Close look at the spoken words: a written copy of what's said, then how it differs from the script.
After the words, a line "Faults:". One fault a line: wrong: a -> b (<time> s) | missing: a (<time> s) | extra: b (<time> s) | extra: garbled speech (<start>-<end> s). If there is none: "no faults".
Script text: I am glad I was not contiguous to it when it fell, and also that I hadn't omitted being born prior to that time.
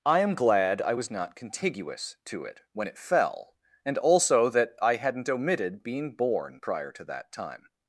I am glad I was not contiguous to it when it fell, and also that I hadn't omitted being born prior to that time.
Faults:
no faults